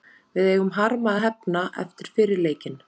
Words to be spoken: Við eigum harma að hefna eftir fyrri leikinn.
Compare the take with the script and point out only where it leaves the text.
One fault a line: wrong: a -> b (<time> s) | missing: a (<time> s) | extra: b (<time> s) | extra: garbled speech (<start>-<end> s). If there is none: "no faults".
no faults